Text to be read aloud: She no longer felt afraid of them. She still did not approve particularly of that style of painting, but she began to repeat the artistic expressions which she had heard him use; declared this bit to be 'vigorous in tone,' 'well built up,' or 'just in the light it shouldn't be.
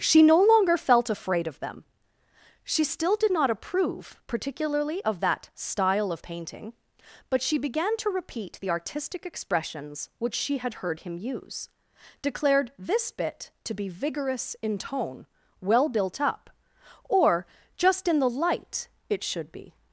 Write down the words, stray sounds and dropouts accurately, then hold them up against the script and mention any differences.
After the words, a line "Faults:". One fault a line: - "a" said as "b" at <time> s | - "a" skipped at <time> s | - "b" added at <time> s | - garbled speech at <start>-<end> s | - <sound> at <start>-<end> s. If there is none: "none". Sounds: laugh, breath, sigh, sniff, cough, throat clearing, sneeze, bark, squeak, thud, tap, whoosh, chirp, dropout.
She no longer felt afraid of them. She still did not approve particularly of that style of painting, but she began to repeat the artistic expressions which she had heard him use; declared this bit to be 'vigorous in tone,' 'well built up,' or 'just in the light it should be.
Faults:
- "shouldn't" said as "should" at 19.2 s